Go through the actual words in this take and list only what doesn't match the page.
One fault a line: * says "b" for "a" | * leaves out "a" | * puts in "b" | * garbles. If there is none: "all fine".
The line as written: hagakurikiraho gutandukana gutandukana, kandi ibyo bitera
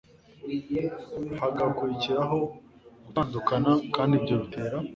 * leaves out "gutandukana"